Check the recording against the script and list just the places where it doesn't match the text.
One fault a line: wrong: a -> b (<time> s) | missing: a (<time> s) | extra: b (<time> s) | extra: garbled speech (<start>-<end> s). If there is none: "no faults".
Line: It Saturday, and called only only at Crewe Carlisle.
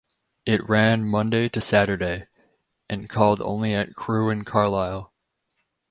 extra: ran Monday to (0.7 s)
missing: only (3.7 s)
extra: and (4.3 s)